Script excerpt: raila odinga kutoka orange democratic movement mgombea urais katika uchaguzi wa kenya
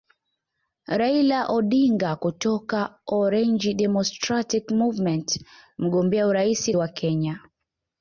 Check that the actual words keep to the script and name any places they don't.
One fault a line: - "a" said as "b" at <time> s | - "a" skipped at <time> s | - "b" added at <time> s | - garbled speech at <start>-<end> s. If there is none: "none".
- "katika uchaguzi" skipped at 6.7 s